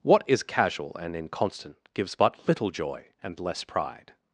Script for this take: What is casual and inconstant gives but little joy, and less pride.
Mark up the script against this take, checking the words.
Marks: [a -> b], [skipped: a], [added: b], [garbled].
What is casual and inconstant gives but little joy, and less pride.